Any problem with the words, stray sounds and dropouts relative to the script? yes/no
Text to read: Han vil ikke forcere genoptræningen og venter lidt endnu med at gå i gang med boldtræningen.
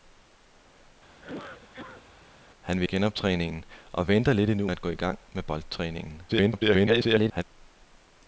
yes